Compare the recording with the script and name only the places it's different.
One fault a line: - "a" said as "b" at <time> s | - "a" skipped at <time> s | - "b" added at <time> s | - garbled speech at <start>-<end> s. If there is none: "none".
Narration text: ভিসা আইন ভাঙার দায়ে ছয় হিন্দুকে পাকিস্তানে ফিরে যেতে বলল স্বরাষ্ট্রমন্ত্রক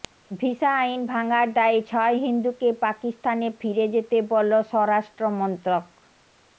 none